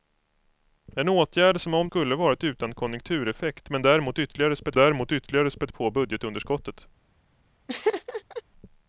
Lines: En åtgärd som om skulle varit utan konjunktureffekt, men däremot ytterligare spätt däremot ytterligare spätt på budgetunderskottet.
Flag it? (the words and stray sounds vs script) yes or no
yes